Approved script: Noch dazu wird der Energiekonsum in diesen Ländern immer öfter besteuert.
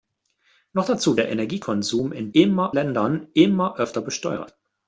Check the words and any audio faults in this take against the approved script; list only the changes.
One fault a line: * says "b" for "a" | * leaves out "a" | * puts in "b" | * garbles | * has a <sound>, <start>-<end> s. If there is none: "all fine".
* leaves out "wird"
* says "immer" for "diesen"